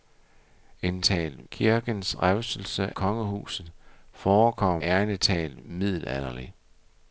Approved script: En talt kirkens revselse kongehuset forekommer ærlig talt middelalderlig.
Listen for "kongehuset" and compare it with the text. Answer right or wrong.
right